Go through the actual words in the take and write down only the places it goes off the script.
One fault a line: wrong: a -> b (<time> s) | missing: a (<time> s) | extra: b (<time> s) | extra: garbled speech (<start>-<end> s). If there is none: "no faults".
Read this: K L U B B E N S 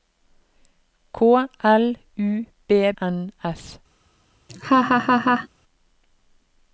missing: B E (2.9 s)